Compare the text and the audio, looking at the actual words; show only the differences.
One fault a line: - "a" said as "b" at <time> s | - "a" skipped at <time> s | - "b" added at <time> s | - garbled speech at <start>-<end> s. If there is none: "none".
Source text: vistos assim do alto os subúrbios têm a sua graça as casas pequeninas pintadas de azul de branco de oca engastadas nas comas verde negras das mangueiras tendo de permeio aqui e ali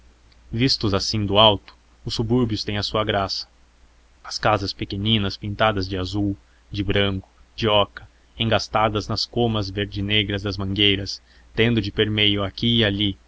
none